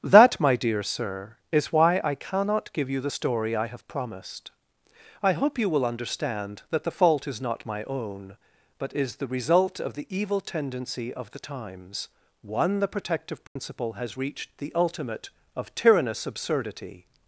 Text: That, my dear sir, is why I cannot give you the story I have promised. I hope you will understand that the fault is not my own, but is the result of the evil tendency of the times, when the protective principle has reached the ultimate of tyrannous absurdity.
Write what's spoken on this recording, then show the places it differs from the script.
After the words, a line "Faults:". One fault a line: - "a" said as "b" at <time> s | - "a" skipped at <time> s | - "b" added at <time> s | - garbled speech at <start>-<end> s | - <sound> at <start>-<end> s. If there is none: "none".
That, my dear sir, is why I cannot give you the story I have promised. I hope you will understand that the fault is not my own, but is the result of the evil tendency of the times, one the protective principle has reached the ultimate of tyrannous absurdity.
Faults:
- "when" said as "one" at 12.4 s
- dropout at 13.5-13.6 s